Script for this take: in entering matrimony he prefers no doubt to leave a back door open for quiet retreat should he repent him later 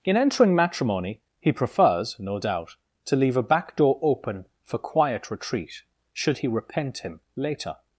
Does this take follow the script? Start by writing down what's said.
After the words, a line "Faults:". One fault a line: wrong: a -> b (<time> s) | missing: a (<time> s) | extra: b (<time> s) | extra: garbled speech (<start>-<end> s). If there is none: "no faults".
in entering matrimony he prefers no doubt to leave a back door open for quiet retreat should he repent him later
Faults:
no faults